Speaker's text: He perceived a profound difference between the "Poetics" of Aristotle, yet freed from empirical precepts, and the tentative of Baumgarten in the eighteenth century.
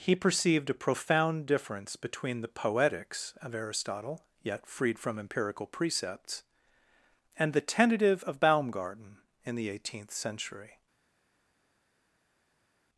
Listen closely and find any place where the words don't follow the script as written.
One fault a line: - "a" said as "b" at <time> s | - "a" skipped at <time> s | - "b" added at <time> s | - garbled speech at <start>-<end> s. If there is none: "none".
none